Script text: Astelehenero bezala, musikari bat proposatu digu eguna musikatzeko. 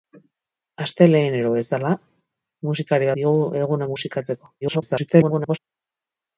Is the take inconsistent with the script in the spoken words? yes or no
yes